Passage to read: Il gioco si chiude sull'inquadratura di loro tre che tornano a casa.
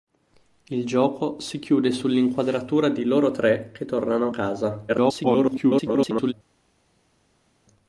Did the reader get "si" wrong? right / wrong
right